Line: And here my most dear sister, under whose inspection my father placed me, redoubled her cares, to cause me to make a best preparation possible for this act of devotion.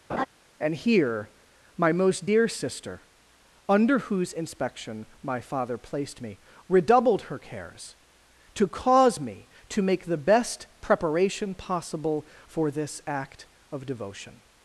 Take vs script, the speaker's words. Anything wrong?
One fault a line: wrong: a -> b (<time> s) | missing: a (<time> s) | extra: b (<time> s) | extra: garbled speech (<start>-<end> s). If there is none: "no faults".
wrong: a -> the (10.0 s)